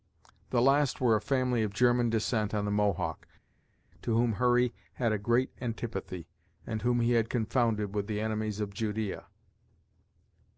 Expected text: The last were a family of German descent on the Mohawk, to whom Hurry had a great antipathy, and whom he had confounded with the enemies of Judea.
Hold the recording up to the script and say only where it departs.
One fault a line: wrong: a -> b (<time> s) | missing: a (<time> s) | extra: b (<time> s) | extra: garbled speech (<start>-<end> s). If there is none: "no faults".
no faults